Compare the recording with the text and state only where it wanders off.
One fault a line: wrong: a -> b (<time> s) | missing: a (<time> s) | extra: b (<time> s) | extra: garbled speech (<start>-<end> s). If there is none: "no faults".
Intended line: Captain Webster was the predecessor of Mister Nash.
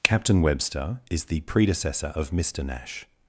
wrong: was -> is (1.1 s)